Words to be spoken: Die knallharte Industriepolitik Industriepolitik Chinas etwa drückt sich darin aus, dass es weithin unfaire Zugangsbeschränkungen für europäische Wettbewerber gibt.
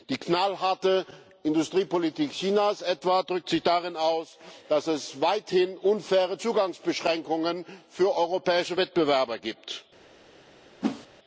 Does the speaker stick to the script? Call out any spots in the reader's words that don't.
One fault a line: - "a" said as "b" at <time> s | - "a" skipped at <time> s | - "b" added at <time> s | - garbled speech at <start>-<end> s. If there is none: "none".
- "Industriepolitik" skipped at 2.3 s